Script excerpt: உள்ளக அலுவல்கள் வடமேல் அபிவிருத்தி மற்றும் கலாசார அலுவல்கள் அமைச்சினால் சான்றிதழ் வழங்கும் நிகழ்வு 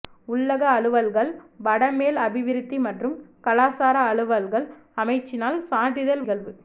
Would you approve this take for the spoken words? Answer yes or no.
no